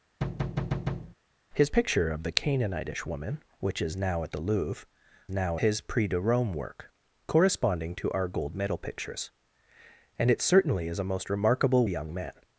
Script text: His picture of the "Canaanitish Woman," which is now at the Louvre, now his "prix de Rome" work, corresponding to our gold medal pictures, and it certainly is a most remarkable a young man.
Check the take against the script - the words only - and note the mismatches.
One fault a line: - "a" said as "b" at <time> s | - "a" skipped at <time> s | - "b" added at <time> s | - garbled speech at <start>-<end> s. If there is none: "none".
none